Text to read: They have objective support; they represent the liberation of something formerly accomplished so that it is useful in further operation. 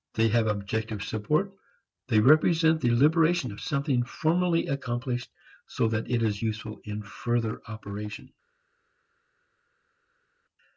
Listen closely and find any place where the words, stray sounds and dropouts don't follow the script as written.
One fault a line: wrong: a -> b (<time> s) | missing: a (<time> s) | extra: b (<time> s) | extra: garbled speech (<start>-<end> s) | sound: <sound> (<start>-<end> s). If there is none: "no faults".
no faults